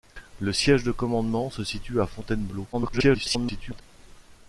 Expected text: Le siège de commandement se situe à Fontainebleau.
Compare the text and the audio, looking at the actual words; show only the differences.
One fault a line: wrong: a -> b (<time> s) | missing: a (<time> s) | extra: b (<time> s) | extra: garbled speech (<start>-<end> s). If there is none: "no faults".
extra: garbled speech (2.7-3.8 s)